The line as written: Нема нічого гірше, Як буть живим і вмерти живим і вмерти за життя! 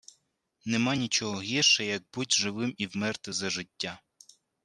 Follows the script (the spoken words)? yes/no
no